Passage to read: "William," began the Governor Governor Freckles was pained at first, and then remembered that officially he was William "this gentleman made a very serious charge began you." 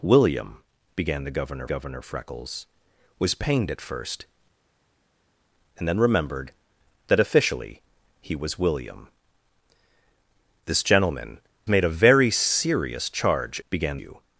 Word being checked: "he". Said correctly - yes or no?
yes